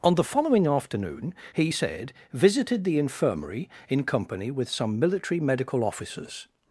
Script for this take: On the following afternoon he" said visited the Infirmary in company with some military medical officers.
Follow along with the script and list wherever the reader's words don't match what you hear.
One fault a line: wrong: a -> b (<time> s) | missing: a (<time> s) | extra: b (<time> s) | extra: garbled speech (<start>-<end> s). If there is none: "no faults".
no faults